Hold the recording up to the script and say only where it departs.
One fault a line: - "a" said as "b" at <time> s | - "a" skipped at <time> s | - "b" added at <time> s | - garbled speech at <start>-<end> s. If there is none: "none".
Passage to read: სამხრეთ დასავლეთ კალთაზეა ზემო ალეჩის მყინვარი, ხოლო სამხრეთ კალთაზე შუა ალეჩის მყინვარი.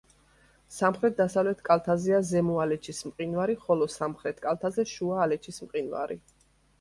none